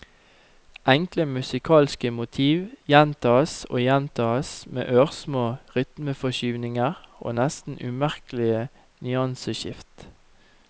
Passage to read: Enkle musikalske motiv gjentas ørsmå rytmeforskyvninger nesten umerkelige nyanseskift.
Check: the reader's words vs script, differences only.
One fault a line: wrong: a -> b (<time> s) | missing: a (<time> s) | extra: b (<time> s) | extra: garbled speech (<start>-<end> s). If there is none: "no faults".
extra: og gjentas med (3.7 s)
extra: og (7.2 s)